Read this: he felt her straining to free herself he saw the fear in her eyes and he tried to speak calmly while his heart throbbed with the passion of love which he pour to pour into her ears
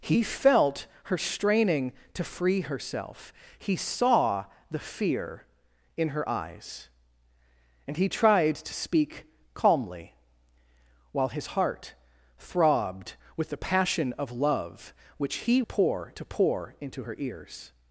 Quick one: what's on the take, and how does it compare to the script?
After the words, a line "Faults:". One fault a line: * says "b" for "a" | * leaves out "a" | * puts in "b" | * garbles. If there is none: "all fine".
he felt her straining to free herself he saw the fear in her eyes and he tried to speak calmly while his heart throbbed with the passion of love which he pour to pour into her ears
Faults:
all fine